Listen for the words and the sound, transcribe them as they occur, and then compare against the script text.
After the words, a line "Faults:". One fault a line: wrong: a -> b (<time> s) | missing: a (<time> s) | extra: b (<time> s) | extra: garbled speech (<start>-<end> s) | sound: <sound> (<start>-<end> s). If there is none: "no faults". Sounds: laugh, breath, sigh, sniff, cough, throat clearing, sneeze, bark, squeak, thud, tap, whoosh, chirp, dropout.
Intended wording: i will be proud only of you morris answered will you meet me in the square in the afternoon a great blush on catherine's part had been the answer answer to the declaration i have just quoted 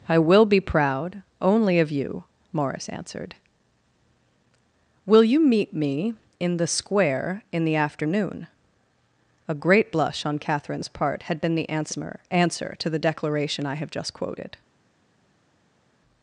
i will be proud only of you morris answered will you meet me in the square in the afternoon a great blush on catherine's part had been the answer answer to the declaration i have just quoted
Faults:
no faults